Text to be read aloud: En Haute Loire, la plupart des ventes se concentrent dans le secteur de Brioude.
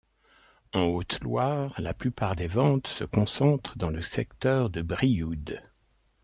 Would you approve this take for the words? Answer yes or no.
yes